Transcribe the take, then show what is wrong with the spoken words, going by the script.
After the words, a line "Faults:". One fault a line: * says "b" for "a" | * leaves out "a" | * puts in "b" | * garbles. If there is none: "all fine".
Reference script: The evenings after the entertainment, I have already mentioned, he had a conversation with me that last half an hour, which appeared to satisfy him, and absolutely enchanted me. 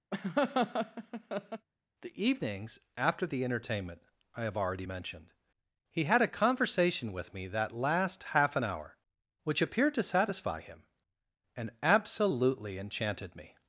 The evenings after the entertainment, I have already mentioned, he had a conversation with me that last half an hour, which appeared to satisfy him, and absolutely enchanted me.
Faults:
all fine